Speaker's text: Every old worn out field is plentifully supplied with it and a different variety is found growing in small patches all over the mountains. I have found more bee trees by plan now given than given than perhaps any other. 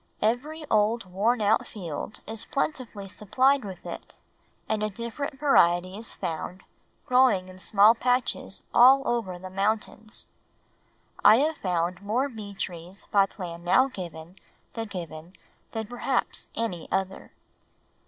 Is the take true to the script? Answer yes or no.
yes